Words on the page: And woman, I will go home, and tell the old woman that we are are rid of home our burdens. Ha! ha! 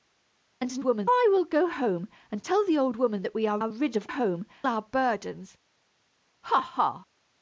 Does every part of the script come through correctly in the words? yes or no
yes